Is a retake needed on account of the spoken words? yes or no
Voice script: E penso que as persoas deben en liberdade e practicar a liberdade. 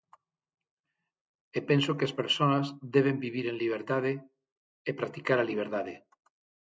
yes